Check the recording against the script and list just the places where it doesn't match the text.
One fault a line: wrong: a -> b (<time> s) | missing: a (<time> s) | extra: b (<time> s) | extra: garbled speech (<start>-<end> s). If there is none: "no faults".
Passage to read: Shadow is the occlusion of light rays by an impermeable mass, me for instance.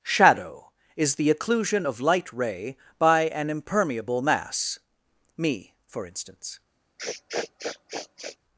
wrong: rays -> ray (2.3 s)